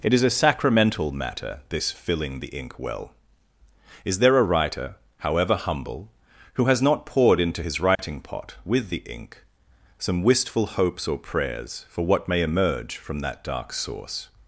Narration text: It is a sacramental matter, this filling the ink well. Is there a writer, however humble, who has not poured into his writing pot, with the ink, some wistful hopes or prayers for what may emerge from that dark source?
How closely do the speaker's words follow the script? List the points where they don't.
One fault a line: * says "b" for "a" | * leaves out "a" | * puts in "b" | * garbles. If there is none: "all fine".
all fine